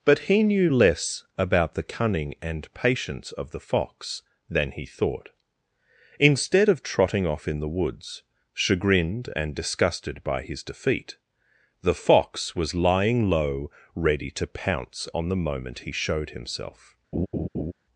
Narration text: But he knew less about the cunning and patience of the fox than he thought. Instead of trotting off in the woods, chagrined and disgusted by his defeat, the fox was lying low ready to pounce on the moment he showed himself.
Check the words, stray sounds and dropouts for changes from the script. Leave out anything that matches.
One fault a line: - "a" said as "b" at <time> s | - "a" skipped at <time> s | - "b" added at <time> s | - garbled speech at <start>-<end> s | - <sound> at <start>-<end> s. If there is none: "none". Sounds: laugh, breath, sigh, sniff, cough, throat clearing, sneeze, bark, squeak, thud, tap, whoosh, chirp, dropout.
- laugh at 17.1-17.7 s